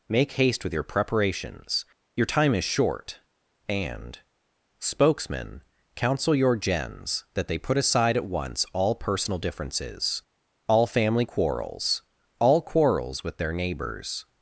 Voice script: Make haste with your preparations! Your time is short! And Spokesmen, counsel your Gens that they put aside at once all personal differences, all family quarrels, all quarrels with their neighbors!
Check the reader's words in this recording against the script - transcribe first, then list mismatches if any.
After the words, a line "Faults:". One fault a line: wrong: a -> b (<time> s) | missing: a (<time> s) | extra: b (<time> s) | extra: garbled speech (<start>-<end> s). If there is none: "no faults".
Make haste with your preparations! Your time is short! And Spokesmen, counsel your Gens that they put aside at once all personal differences, all family quarrels, all quarrels with their neighbors!
Faults:
no faults